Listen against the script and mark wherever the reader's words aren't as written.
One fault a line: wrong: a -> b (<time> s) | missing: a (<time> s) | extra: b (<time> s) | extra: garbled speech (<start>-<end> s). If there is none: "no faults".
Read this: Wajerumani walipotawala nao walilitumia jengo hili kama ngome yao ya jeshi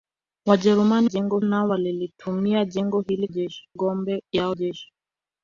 wrong: walipotawala -> jengo (1.0 s)
wrong: kama -> jeshi (3.3 s)
missing: ya (4.5 s)